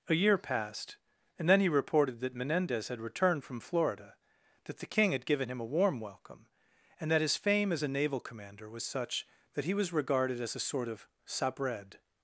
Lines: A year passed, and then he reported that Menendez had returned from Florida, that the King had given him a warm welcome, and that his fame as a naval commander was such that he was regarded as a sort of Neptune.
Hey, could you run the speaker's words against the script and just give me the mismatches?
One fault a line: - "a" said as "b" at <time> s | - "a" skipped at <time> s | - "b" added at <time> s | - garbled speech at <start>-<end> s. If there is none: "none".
- "Neptune" said as "Sabred" at 11.3 s